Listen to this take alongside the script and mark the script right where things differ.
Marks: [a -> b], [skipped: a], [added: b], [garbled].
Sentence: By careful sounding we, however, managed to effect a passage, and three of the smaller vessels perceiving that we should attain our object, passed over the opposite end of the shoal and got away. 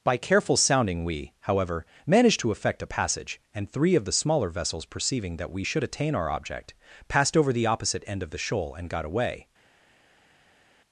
By careful sounding we, however, managed to effect a passage, and three of the smaller vessels perceiving that we should attain our object, passed over the opposite end of the shoal and got away.